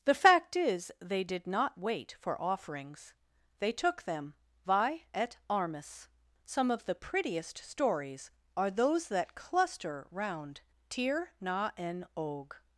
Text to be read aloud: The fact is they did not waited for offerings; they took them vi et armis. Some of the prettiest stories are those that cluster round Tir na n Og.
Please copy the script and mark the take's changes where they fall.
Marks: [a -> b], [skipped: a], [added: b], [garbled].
The fact is they did not [waited -> wait] for offerings; they took them vi et armis. Some of the prettiest stories are those that cluster round Tir na n Og.